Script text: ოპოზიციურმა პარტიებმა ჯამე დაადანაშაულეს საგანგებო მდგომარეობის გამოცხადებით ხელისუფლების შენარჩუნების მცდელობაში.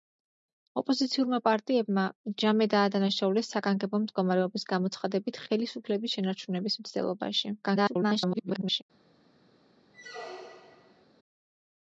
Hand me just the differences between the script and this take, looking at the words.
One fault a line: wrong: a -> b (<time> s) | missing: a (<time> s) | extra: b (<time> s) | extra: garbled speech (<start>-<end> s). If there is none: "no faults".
extra: garbled speech (7.6-8.8 s)